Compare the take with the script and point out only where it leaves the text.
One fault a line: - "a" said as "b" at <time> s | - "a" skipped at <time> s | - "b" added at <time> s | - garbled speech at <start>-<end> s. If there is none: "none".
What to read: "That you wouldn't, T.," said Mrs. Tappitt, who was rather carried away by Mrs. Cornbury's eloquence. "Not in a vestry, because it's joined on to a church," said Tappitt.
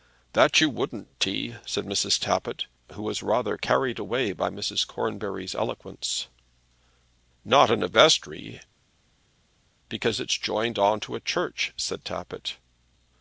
none